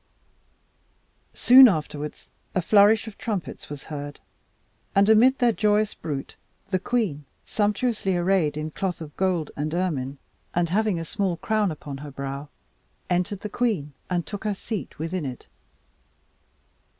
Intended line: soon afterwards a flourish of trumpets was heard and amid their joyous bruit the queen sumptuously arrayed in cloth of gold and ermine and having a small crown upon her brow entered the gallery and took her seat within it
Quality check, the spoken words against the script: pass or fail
fail